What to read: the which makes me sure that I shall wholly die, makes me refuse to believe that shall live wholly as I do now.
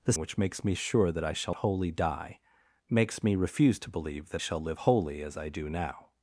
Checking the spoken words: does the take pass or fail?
pass